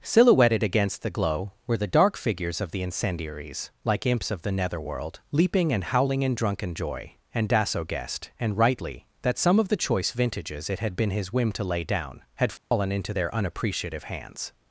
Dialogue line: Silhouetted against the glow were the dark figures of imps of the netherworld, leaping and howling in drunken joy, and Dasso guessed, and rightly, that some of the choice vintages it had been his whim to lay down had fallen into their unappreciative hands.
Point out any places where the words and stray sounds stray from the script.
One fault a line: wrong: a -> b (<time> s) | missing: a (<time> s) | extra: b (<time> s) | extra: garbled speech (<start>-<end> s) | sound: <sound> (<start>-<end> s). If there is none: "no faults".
extra: the incendiaries like (2.7 s)
sound: dropout (12.6-12.7 s)